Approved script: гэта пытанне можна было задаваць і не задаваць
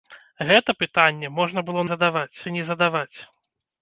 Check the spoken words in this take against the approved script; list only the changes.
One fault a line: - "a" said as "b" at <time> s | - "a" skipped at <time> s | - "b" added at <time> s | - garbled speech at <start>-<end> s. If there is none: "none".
none